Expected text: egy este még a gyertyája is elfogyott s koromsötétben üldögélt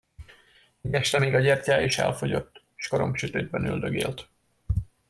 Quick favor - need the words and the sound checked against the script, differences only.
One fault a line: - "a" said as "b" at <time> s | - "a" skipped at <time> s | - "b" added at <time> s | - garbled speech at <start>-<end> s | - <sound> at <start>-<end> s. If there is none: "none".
none